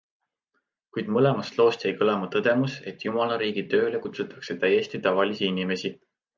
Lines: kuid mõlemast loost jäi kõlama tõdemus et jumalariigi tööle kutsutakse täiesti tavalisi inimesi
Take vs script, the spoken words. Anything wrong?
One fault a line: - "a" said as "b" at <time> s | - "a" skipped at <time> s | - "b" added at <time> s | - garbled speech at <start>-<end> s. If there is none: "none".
none